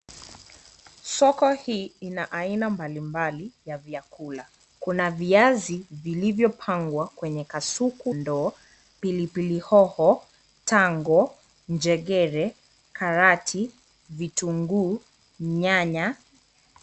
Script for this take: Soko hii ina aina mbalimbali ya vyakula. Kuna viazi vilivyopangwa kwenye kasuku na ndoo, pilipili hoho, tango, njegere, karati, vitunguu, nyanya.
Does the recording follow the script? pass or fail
fail